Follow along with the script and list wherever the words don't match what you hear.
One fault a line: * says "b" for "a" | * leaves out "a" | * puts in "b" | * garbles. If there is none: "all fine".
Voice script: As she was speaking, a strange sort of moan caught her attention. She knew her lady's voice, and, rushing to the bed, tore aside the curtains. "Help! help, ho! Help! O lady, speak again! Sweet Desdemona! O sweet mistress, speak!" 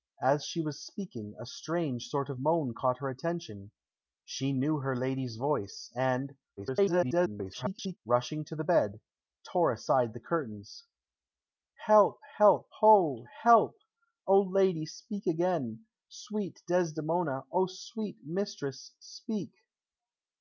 * garbles